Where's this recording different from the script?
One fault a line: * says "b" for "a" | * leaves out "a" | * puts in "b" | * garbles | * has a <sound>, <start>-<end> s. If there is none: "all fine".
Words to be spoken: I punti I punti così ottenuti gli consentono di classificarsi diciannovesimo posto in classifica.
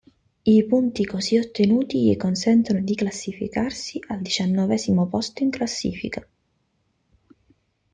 * leaves out "I punti"
* puts in "al"